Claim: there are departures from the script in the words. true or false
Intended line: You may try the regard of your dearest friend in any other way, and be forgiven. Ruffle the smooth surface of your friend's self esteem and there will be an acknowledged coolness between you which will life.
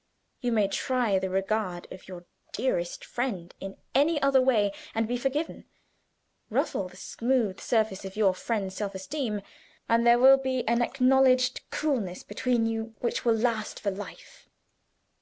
true